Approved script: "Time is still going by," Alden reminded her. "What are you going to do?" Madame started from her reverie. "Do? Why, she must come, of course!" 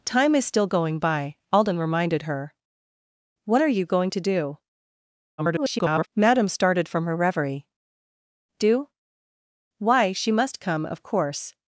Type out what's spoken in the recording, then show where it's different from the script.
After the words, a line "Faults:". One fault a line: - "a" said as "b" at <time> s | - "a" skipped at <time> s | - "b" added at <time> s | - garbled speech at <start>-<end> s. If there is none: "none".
"Time is still going by," Alden reminded her. "What are you going to do?" [garbled] Madame started from her reverie. "Do? Why, she must come, of course!"
Faults:
- garbled speech at 5.4-6.1 s